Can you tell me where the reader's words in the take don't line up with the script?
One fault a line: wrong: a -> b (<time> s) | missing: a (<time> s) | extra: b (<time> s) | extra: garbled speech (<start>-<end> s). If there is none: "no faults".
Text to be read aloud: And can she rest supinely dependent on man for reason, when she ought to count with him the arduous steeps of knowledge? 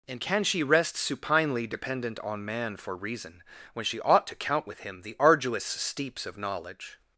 no faults